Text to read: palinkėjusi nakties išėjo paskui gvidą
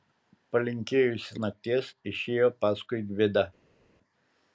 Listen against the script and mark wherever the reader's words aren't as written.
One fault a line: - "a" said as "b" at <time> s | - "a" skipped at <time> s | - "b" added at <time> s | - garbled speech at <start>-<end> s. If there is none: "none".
none